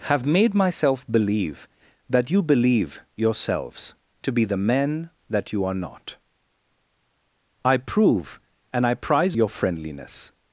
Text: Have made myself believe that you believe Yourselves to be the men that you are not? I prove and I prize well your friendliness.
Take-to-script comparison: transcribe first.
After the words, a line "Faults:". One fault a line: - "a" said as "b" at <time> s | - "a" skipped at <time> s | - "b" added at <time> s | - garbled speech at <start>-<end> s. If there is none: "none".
Have made myself believe that you believe Yourselves to be the men that you are not? I prove and I prize your friendliness.
Faults:
- "well" skipped at 9.4 s